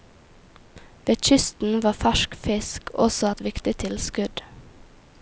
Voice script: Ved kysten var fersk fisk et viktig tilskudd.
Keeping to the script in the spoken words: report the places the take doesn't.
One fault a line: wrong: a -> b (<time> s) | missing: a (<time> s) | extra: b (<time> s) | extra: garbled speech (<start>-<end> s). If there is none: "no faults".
extra: også (2.9 s)